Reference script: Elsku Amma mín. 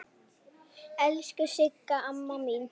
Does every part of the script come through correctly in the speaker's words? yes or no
no